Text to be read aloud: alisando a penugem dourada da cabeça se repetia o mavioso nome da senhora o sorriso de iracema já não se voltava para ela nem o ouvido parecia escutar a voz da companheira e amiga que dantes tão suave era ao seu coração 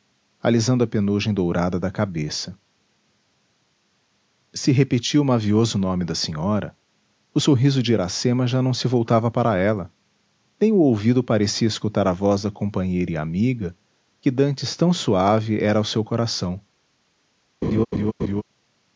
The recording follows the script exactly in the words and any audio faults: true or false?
false